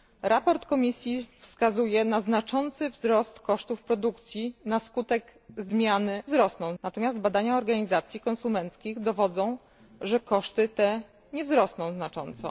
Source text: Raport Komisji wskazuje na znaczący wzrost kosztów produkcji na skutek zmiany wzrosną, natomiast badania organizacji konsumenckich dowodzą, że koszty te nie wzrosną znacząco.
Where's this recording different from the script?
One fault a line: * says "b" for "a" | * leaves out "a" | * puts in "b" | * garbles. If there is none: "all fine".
all fine